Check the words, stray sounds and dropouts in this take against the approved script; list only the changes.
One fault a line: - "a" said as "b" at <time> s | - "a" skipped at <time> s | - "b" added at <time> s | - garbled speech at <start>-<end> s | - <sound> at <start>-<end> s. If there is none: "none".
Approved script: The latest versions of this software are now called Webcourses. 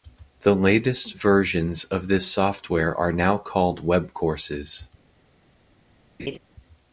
- laugh at 6.2-6.4 s